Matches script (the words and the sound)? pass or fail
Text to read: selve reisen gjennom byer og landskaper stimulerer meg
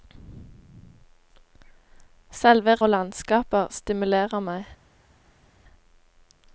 fail